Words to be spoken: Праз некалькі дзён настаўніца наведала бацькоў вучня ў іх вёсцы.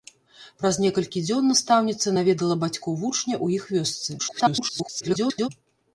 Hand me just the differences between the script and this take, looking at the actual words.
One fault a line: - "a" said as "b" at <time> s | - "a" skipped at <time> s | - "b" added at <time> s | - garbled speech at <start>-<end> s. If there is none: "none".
- garbled speech at 4.2-5.5 s